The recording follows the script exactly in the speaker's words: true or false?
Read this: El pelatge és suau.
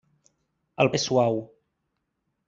false